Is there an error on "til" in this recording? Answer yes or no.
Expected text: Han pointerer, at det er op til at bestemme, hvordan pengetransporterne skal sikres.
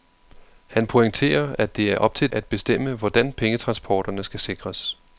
no